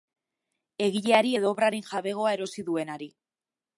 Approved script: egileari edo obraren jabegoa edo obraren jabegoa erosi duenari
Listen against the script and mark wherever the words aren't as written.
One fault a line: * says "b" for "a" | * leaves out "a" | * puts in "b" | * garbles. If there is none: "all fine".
* leaves out "edo obraren jabegoa"